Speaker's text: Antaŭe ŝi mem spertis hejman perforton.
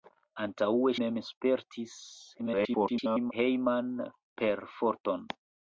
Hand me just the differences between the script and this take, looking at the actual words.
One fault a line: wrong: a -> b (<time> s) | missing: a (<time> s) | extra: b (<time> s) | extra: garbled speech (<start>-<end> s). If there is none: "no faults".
missing: ŝi (0.9 s)
extra: garbled speech (2.4-3.3 s)